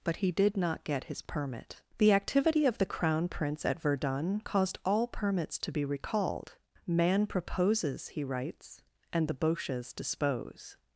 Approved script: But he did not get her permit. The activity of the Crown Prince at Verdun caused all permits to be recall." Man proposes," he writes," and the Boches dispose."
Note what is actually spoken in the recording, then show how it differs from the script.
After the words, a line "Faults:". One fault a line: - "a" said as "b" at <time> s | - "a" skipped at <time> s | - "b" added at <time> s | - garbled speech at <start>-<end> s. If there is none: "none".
But he did not get his permit. The activity of the Crown Prince at Verdun caused all permits to be recalled." Man proposes," he writes," and the Boches dispose."
Faults:
- "her" said as "his" at 1.1 s
- "recall" said as "recalled" at 5.8 s